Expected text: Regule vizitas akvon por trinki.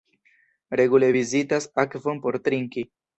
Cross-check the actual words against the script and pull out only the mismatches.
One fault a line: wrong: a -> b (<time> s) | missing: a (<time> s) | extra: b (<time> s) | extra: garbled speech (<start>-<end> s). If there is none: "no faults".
no faults